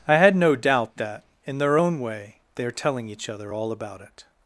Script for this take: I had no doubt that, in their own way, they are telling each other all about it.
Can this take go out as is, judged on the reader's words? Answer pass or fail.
pass